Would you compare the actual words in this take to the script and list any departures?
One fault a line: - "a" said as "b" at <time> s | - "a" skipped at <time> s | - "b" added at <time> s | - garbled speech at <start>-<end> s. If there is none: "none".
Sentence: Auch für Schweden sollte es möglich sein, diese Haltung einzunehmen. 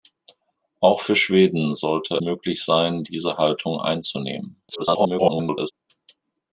- "es" skipped at 2.2 s
- garbled speech at 4.7-5.7 s